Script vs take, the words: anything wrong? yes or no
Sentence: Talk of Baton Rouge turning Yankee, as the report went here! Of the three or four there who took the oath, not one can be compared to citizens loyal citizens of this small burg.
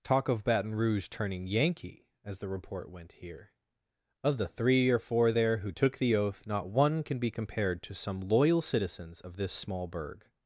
yes